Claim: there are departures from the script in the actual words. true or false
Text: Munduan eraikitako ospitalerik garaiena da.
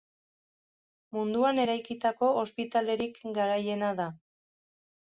false